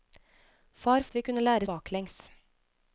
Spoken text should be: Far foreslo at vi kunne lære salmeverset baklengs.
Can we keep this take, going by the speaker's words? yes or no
no